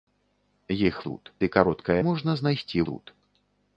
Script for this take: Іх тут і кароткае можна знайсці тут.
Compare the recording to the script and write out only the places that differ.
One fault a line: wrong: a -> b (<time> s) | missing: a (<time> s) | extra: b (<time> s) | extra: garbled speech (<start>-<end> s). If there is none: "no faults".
no faults